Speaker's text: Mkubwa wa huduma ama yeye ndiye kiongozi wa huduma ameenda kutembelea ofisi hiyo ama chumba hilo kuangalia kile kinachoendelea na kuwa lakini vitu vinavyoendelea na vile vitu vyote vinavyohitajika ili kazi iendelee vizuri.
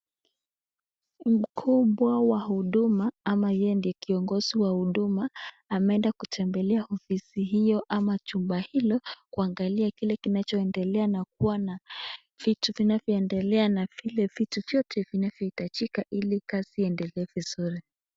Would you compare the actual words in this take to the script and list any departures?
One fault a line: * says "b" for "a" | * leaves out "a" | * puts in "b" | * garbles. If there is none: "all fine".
* says "na" for "lakini"